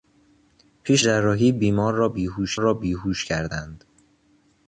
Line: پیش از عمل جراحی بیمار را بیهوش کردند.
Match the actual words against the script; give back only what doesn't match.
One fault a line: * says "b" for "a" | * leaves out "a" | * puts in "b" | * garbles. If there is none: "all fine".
* says "جراحی بیمار را بیهوش" for "از عمل جراحی بیمار"